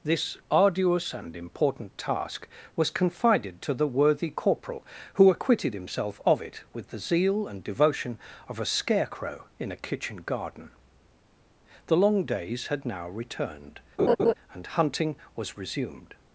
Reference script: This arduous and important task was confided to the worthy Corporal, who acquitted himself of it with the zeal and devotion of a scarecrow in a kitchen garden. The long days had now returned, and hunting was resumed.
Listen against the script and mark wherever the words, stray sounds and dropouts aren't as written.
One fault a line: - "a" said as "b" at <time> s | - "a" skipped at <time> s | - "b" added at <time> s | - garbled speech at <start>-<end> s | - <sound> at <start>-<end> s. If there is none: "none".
- laugh at 14.0-14.3 s